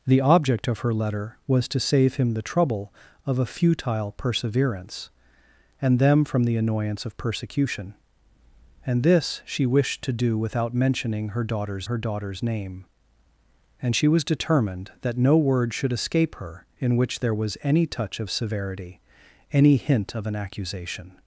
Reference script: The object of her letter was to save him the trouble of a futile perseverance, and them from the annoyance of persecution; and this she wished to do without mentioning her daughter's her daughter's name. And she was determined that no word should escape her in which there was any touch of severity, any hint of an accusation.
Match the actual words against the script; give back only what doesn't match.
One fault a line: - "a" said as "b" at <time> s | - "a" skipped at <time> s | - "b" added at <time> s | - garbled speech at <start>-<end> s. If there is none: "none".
none